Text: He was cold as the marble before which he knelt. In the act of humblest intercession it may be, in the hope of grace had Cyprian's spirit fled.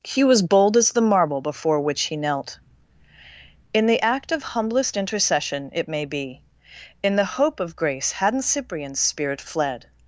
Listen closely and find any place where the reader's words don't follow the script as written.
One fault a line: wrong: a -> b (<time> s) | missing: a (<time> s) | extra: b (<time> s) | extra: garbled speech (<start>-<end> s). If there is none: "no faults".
wrong: cold -> bold (0.4 s)
wrong: had -> hadn't (8.1 s)